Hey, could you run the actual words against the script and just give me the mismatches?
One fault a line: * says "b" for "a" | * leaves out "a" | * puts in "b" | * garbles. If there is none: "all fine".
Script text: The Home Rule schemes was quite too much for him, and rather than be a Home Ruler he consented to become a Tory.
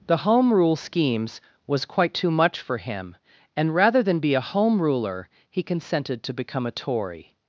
all fine